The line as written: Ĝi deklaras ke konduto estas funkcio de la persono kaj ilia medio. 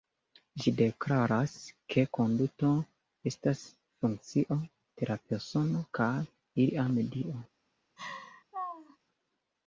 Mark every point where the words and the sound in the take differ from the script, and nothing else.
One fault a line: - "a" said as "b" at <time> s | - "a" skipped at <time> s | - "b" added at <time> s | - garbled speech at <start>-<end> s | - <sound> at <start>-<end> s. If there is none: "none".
- laugh at 8.0-9.0 s